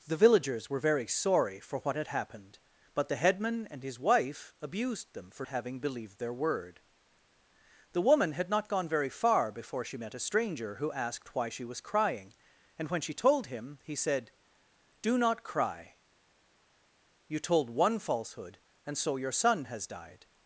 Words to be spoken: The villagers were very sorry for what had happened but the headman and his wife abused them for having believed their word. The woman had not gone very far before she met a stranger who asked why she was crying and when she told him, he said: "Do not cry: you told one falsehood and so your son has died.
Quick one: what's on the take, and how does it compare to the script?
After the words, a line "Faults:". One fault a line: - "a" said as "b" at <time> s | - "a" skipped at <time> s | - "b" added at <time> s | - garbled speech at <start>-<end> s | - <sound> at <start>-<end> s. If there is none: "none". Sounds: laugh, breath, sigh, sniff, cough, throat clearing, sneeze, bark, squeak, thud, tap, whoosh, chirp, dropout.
The villagers were very sorry for what had happened but the headman and his wife abused them for having believed their word. The woman had not gone very far before she met a stranger who asked why she was crying and when she told him, he said: "Do not cry: you told one falsehood and so your son has died.
Faults:
none